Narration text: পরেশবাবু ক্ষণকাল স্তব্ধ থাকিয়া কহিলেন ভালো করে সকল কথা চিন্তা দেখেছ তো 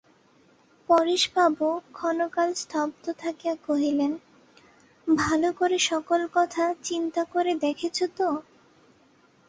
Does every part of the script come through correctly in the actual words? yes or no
no